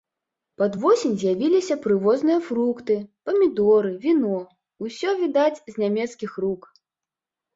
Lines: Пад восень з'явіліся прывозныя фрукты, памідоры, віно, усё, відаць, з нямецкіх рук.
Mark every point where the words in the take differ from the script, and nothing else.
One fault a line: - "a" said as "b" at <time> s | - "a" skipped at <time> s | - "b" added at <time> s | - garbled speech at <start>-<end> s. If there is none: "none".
none